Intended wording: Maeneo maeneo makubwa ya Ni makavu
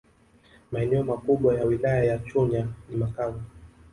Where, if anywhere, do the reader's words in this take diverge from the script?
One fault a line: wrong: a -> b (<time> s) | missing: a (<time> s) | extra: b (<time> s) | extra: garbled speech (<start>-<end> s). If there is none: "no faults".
missing: maeneo (1.0 s)
extra: Wilaya ya Chunya (1.6 s)